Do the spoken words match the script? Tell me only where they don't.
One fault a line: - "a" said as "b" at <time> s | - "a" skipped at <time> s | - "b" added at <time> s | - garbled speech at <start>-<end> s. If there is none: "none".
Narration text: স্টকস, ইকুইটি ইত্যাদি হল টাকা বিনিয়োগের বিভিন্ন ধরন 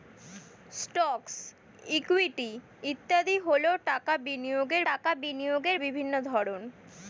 - "টাকা বিনিয়োগের" added at 4.9 s